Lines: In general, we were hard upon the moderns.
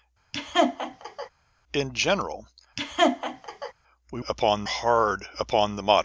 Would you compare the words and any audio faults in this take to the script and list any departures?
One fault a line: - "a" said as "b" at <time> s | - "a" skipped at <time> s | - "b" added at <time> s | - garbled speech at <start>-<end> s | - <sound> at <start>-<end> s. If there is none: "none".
- laugh at 0.3-1.3 s
- laugh at 2.8-3.7 s
- "were" said as "upon" at 4.3 s